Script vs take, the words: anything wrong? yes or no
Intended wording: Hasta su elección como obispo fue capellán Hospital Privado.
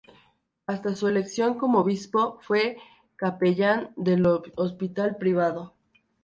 yes